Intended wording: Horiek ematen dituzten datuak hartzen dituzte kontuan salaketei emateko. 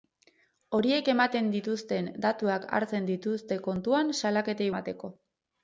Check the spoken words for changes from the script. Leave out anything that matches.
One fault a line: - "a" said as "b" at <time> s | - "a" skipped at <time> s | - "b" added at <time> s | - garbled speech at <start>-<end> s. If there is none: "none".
none